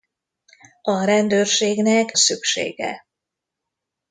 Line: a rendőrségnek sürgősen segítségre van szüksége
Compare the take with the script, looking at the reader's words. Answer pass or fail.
fail